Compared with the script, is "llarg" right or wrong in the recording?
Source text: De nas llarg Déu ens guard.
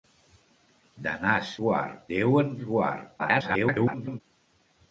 wrong